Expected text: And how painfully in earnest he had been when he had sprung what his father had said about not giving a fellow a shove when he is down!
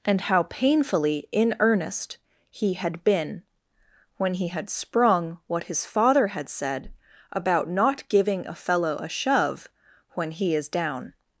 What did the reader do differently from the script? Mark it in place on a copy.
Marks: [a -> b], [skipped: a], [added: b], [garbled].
And how painfully in earnest he had been when he had sprung what his father had said about not giving a fellow a shove when he is down!